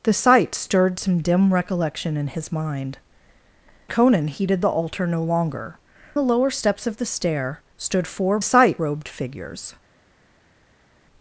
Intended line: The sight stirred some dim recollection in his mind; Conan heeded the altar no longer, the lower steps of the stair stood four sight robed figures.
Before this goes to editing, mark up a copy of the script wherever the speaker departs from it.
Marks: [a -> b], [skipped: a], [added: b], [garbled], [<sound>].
The sight stirred some dim recollection in his mind; Conan heeded the altar no longer, the lower steps of the stair stood four sight robed figures.